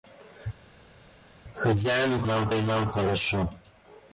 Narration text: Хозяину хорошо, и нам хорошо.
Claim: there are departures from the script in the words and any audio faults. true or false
true